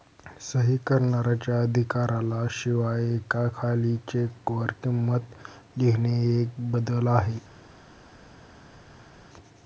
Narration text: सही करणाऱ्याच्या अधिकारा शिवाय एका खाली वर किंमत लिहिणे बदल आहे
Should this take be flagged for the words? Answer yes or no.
yes